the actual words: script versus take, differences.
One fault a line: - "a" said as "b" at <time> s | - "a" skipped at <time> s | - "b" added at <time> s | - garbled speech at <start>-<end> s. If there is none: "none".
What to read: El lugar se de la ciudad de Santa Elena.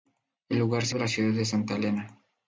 none